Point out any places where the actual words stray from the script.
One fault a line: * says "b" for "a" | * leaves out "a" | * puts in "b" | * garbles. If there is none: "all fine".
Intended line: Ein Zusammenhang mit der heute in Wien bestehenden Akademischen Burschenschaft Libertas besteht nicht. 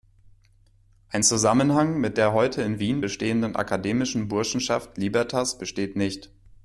all fine